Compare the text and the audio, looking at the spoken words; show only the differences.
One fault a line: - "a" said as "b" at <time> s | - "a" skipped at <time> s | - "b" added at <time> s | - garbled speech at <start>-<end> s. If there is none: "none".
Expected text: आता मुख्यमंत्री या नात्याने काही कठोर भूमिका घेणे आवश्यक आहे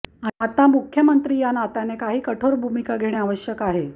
none